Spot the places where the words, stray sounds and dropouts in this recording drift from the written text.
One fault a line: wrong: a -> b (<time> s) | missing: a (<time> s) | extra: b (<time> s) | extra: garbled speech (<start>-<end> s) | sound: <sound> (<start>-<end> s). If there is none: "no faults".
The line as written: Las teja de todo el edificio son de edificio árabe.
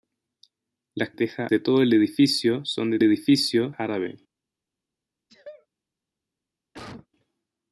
sound: sneeze (5.3-5.7 s)
sound: cough (6.7-7.1 s)